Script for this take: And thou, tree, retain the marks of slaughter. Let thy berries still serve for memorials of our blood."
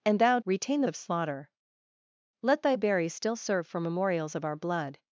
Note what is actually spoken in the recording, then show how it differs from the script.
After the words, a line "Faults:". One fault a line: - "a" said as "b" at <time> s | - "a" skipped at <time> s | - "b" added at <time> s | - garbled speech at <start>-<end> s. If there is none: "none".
And thou, retain the of slaughter. Let thy berries still serve for memorials of our blood."
Faults:
- "tree" skipped at 0.4 s
- "marks" skipped at 0.9 s